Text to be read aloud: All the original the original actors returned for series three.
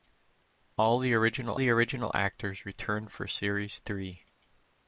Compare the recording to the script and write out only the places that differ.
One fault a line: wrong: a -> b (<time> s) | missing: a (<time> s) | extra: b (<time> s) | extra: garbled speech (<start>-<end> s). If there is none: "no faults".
no faults